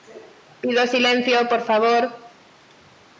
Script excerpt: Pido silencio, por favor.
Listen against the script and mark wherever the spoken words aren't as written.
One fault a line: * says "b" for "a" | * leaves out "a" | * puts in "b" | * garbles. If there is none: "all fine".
all fine